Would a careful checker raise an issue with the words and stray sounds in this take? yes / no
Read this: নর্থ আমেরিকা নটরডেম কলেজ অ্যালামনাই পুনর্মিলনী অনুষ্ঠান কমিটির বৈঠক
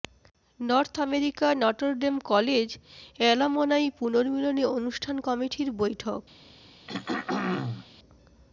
yes